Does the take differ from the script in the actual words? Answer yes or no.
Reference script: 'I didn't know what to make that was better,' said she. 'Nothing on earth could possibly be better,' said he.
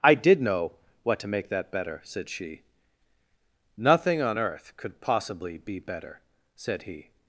yes